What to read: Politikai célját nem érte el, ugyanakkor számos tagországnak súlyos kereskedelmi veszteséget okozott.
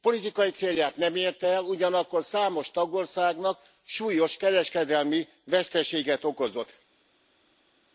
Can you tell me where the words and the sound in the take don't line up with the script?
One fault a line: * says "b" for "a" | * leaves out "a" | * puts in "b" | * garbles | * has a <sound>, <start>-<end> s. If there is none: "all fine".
all fine